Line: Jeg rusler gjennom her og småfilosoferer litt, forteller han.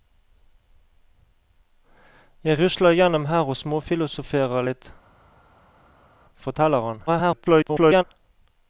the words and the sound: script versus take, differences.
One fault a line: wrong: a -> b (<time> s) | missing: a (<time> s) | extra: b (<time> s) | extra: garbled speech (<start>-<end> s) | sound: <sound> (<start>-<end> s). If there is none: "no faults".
extra: garbled speech (7.1-8.0 s)